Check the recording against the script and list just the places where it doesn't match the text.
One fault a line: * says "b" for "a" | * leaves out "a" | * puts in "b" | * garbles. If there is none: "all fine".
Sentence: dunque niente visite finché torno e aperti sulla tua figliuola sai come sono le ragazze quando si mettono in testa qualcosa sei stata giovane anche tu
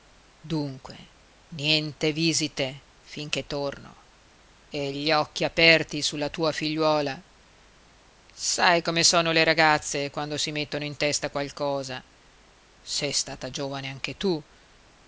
* puts in "gli occhi"